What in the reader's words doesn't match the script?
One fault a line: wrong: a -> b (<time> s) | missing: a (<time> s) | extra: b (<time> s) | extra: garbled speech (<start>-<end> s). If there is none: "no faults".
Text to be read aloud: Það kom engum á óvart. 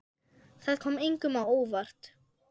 no faults